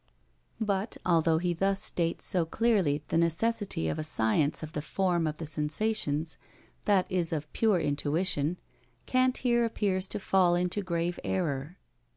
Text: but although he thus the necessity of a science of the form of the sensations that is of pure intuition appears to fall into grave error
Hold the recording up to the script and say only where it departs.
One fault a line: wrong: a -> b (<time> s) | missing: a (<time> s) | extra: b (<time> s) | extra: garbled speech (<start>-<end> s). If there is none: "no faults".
extra: states so clearly (1.8 s)
extra: kant here (9.1 s)